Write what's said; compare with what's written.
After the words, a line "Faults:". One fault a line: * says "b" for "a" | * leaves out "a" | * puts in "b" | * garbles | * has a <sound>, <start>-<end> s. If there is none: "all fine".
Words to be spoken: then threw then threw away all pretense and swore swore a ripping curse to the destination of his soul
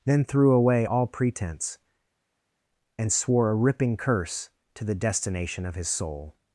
then threw away all pretense and swore a ripping curse to the destination of his soul
Faults:
* leaves out "then threw"
* leaves out "swore"